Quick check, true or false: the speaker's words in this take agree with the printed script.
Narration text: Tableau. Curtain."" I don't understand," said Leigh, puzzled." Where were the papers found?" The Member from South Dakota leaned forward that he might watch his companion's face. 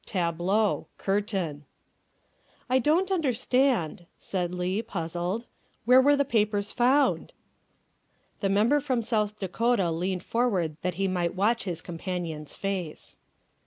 true